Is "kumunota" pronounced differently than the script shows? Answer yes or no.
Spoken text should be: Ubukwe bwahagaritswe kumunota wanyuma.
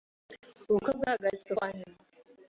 yes